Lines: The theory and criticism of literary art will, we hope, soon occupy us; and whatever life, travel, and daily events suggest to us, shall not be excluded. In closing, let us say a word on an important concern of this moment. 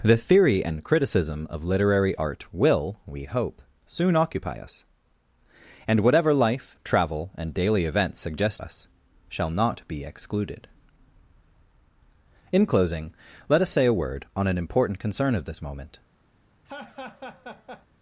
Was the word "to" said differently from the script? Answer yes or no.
yes